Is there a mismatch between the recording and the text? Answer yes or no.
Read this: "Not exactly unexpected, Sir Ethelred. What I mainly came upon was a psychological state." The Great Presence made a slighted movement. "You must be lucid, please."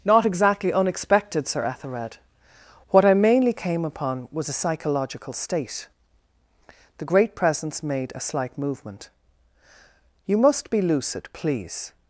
yes